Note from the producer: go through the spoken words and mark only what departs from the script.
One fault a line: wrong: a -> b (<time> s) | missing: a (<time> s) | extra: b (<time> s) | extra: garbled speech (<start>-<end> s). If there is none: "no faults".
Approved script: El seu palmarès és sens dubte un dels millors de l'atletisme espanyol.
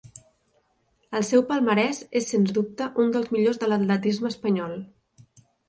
no faults